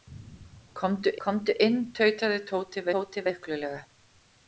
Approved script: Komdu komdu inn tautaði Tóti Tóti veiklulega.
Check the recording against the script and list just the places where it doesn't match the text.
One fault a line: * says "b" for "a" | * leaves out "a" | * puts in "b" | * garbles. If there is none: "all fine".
all fine